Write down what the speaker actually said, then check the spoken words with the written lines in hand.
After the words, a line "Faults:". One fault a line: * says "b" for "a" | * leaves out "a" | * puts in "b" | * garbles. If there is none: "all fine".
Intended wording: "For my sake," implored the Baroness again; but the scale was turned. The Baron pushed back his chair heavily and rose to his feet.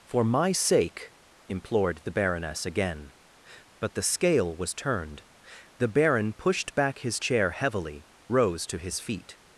"For my sake," implored the Baroness again; but the scale was turned. The Baron pushed back his chair heavily rose to his feet.
Faults:
* leaves out "and"